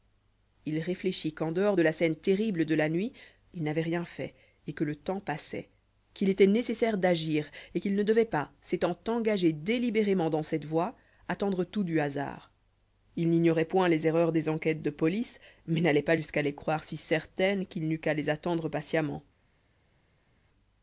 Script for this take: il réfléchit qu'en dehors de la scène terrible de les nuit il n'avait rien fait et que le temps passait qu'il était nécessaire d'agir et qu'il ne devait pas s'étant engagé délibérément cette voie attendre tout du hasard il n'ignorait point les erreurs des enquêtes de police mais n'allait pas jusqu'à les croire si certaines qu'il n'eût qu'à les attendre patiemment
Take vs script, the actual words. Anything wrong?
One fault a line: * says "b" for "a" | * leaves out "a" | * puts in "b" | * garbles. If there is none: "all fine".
* says "la" for "les"
* puts in "dans"